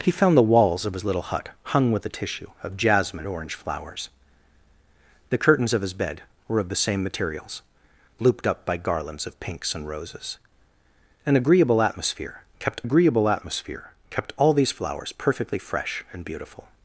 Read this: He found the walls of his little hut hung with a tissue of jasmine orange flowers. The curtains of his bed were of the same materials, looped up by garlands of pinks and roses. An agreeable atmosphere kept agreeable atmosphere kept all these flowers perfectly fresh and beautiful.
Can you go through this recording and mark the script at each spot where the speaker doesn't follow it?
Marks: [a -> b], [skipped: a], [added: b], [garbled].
He found the walls of his little hut hung with a tissue of jasmine orange flowers. The curtains of his bed were of the same materials, looped up by garlands of pinks and roses. An agreeable atmosphere kept agreeable atmosphere kept all these flowers perfectly fresh and beautiful.